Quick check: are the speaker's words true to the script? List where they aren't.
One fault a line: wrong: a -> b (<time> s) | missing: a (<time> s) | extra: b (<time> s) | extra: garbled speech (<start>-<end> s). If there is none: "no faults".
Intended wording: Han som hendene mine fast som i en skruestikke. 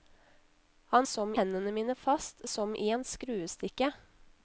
no faults